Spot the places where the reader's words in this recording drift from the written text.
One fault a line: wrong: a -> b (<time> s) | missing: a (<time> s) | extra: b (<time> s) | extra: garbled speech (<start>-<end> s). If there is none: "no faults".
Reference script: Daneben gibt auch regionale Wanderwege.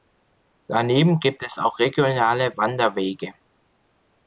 extra: es (1.4 s)